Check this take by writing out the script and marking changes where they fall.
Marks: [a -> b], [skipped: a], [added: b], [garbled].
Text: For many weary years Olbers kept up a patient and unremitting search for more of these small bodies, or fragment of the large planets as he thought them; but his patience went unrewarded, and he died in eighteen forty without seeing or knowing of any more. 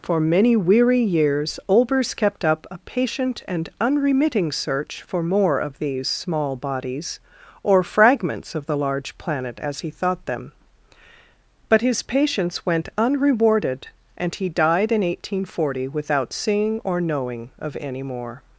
For many weary years Olbers kept up a patient and unremitting search for more of these small bodies, or [fragment -> fragments] of the large [planets -> planet] as he thought them; but his patience went unrewarded, and he died in eighteen forty without seeing or knowing of any more.